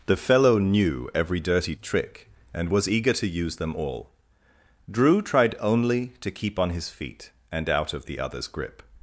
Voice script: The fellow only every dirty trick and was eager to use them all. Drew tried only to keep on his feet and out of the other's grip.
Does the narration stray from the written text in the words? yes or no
yes